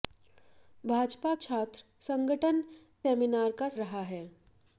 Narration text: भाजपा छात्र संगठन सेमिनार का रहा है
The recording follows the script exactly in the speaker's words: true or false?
true